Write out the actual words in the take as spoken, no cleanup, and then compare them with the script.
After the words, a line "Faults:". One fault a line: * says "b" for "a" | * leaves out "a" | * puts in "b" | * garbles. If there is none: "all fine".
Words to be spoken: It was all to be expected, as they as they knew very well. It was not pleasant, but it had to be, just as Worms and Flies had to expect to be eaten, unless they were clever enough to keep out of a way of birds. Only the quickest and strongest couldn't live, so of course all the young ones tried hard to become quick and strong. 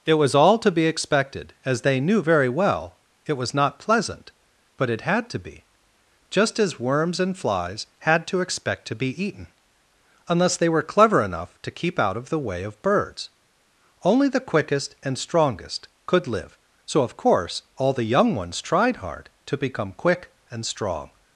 It was all to be expected, as they knew very well. It was not pleasant, but it had to be, just as Worms and Flies had to expect to be eaten, unless they were clever enough to keep out of the way of birds. Only the quickest and strongest could live, so of course all the young ones tried hard to become quick and strong.
Faults:
* leaves out "as they"
* says "the" for "a"
* says "could" for "couldn't"